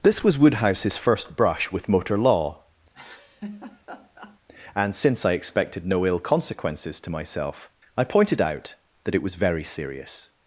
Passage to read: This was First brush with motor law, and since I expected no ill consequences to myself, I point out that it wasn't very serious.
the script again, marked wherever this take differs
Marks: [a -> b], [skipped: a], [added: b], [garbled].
This was [added: Woodhouse's] First brush with motor law, and since I expected no ill consequences to myself, I [point -> pointed] out that it [wasn't -> was] very serious.